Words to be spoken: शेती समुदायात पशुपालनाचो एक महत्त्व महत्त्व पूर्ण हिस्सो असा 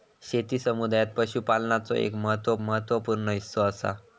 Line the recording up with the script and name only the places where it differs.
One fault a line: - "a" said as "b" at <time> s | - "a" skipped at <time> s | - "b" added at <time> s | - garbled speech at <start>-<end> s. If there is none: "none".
none